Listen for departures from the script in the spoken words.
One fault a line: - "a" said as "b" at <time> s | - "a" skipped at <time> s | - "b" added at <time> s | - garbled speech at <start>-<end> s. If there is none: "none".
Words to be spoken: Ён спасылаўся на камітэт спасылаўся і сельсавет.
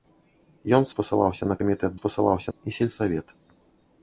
none